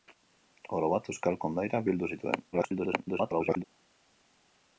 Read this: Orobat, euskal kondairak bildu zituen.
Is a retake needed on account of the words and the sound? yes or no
yes